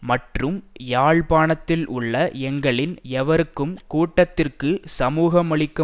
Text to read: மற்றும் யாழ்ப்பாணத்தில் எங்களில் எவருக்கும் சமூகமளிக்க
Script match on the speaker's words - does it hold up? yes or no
no